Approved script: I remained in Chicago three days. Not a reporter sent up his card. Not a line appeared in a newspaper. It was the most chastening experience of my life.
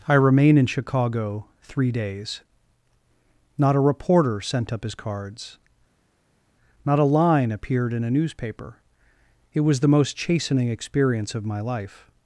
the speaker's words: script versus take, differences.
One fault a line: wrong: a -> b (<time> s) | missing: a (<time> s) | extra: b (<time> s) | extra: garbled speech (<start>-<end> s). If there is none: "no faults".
wrong: remained -> remain (0.1 s)
wrong: card -> cards (5.0 s)